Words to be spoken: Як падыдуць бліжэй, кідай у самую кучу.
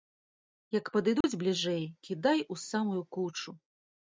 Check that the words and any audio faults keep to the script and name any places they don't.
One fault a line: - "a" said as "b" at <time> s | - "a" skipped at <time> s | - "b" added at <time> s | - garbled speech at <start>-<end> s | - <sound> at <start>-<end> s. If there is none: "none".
- dropout at 1.2-1.2 s